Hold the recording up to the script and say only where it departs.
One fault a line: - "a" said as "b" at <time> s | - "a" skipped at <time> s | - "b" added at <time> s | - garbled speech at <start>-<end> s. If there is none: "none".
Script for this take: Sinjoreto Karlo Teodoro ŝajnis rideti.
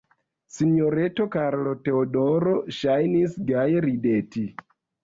- "gaje" added at 3.5 s